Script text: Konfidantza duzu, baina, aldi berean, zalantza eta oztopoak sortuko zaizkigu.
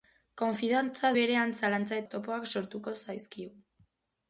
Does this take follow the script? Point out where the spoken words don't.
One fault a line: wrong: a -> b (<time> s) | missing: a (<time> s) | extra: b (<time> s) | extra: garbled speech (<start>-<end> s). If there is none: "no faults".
missing: duzu baina aldi (1.1 s)
missing: eta (2.0 s)